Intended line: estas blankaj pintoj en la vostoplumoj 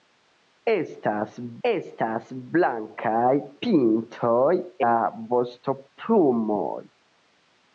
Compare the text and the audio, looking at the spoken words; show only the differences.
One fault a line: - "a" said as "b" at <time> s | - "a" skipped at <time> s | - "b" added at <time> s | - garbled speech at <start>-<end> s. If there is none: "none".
- "estas" added at 1.7 s
- "en" skipped at 4.5 s